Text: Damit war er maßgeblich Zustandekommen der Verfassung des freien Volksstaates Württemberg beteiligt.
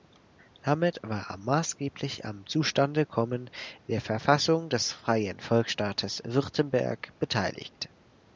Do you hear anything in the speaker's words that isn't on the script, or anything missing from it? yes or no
yes